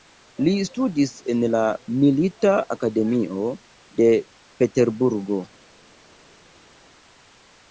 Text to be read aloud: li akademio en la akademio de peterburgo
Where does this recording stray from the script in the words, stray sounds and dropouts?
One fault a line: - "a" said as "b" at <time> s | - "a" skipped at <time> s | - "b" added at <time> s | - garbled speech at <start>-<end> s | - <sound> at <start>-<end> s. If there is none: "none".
- "akademio" said as "studis" at 0.7 s
- "milita" added at 2.0 s